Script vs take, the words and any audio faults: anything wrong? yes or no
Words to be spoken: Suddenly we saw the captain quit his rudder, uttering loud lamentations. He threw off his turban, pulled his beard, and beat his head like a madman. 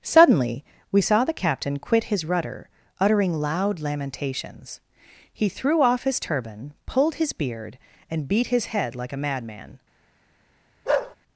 yes